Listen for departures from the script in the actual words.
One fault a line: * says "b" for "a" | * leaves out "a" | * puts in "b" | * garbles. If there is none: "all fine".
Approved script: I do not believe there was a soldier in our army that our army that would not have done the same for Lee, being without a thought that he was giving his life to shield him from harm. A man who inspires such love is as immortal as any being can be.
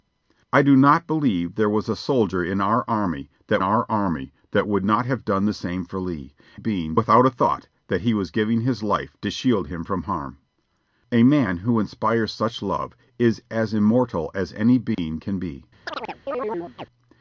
all fine